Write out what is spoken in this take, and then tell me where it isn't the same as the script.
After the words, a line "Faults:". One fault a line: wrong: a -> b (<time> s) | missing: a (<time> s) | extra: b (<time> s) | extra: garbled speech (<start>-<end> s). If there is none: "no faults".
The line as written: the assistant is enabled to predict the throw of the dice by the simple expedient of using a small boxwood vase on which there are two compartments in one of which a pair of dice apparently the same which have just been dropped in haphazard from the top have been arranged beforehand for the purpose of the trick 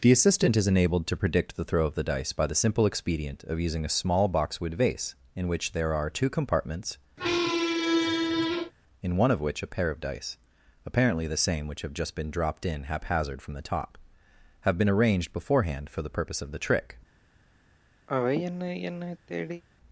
the assistant is enabled to predict the throw of the dice by the simple expedient of using a small boxwood vase in which there are two compartments in one of which a pair of dice apparently the same which have just been dropped in haphazard from the top have been arranged beforehand for the purpose of the trick
Faults:
wrong: on -> in (5.3 s)